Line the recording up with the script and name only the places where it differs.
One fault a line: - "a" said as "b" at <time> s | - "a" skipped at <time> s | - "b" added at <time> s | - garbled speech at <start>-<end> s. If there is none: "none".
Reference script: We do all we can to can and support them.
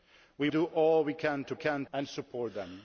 none